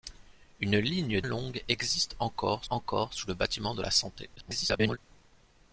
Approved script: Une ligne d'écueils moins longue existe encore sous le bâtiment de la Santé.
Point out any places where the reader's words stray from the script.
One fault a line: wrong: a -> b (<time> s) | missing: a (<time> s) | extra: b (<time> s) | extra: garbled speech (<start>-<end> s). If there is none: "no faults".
missing: d'écueils moins (1.2 s)
extra: encore (2.7 s)
extra: garbled speech (4.4-5.0 s)